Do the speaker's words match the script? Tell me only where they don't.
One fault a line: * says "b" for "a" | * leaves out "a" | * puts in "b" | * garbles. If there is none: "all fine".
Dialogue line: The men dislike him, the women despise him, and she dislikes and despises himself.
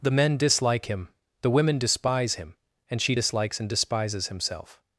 all fine